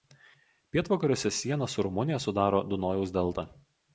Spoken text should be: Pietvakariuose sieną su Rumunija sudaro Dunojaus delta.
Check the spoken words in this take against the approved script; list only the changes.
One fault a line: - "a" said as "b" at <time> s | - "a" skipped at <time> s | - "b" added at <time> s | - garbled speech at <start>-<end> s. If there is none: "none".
none